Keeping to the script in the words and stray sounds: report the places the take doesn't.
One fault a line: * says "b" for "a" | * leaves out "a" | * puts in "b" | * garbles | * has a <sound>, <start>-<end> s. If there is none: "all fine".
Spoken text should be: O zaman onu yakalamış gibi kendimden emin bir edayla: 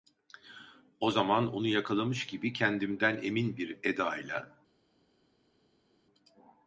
all fine